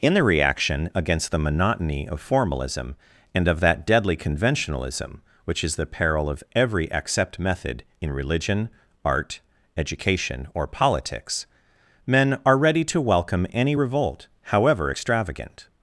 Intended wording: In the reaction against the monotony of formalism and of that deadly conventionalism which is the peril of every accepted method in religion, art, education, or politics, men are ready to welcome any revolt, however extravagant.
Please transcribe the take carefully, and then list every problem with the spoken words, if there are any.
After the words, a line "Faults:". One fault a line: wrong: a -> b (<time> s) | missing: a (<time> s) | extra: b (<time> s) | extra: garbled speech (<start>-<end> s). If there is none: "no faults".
In the reaction against the monotony of formalism and of that deadly conventionalism which is the peril of every accept method in religion, art, education, or politics, men are ready to welcome any revolt, however extravagant.
Faults:
wrong: accepted -> accept (6.9 s)